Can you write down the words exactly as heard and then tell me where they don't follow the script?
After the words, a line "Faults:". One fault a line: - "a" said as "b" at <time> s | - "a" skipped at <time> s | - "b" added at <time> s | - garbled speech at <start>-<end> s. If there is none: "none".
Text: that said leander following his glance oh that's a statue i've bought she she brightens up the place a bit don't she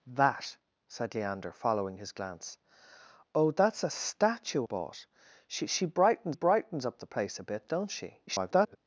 that said leander following his glance oh that's a statue bought she she brightens brightens up the place a bit don't she [garbled]
Faults:
- "i've" skipped at 4.7 s
- "brightens" added at 6.3 s
- garbled speech at 8.3-8.8 s